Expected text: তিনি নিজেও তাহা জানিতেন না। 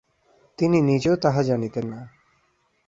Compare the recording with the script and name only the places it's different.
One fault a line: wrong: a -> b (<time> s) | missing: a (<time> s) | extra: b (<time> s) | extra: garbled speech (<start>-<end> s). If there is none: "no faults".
no faults